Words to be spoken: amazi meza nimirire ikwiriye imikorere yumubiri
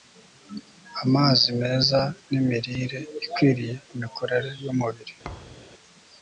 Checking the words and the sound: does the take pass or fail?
fail